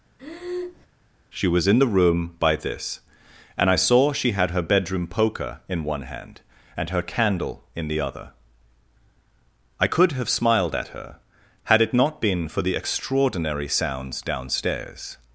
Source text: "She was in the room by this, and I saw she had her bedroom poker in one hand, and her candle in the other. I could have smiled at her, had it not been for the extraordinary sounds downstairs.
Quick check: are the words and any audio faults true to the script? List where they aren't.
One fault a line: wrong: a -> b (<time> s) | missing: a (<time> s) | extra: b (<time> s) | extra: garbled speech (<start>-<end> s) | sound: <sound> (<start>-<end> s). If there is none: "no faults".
sound: breath (0.2-0.9 s)